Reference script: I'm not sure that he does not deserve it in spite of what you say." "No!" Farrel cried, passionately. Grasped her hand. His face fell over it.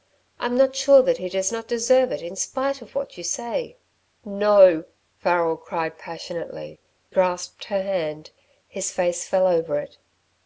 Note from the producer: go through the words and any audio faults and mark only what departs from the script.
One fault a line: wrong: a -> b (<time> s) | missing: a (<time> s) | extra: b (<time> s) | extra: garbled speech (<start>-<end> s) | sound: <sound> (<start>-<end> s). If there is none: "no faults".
no faults